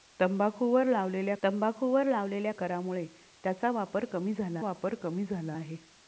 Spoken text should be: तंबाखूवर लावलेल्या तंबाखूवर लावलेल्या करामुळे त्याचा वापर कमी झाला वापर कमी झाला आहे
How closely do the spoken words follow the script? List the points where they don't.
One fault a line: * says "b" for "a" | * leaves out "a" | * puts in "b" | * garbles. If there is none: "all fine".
all fine